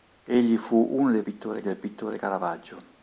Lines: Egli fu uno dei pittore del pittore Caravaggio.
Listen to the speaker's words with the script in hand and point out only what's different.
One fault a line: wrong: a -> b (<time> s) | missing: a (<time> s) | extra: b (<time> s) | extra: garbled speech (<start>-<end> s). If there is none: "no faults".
no faults